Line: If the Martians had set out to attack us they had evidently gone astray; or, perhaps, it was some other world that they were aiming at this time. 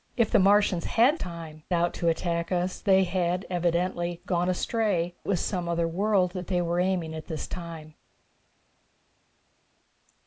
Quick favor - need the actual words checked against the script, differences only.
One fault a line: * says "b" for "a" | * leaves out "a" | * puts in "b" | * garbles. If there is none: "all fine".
* says "time" for "set"
* leaves out "or perhaps it"